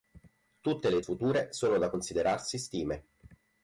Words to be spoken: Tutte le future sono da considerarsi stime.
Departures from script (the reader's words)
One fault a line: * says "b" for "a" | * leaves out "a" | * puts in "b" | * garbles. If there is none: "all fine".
all fine